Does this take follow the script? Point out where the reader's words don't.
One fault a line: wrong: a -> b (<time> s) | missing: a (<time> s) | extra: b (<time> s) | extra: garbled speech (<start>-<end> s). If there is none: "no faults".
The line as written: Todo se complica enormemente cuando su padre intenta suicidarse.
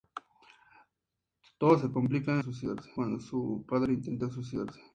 wrong: enormemente -> suicidarse (2.4 s)